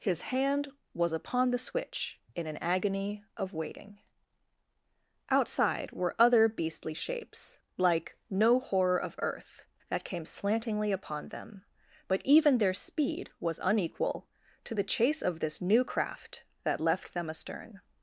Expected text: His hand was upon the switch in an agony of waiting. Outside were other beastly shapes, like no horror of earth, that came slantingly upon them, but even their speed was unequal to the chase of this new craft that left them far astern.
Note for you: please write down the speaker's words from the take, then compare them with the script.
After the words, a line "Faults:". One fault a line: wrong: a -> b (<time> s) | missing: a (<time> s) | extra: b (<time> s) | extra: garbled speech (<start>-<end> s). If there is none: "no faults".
His hand was upon the switch in an agony of waiting. Outside were other beastly shapes, like no horror of earth, that came slantingly upon them, but even their speed was unequal to the chase of this new craft that left them astern.
Faults:
missing: far (17.3 s)